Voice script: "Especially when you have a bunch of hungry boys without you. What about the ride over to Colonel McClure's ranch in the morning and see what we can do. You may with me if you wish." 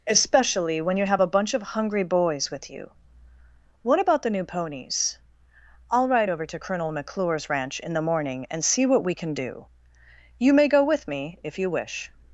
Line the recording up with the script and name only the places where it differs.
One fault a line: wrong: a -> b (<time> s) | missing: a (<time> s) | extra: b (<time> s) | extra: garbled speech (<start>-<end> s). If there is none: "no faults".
wrong: without -> with (2.5 s)
extra: new ponies I'll (4.3 s)
extra: go (10.7 s)